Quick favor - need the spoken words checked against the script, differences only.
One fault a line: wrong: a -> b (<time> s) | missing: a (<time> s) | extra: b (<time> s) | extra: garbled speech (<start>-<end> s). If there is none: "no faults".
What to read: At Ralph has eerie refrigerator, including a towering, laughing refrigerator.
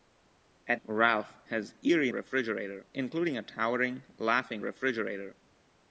no faults